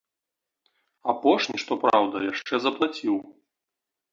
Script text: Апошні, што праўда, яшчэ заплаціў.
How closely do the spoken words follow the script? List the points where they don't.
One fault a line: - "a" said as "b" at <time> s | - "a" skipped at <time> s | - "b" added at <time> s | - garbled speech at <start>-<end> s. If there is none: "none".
none